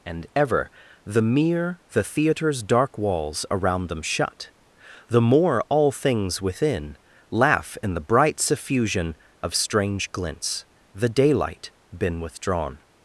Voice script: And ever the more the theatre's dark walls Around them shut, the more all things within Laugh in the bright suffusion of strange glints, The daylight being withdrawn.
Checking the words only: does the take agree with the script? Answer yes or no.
no